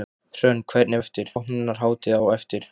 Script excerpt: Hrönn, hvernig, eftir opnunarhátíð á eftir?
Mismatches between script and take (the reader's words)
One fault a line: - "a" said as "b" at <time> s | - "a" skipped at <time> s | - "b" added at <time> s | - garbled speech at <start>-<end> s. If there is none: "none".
none